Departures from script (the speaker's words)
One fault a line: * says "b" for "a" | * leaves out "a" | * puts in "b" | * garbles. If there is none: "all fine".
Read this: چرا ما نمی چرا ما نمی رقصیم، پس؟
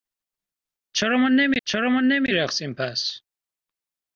all fine